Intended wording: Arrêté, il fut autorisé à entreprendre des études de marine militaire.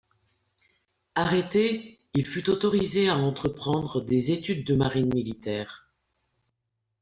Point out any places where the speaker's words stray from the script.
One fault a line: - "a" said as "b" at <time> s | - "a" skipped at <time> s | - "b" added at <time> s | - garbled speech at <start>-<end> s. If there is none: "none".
none